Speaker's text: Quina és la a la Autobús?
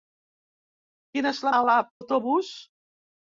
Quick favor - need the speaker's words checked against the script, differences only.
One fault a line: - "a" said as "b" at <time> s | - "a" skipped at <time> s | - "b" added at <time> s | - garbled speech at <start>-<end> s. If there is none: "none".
none